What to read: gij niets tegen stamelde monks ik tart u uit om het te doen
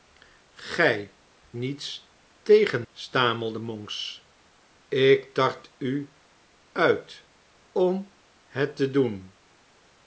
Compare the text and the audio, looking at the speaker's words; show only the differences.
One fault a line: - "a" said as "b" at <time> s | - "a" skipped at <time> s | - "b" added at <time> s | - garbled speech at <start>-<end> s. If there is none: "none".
none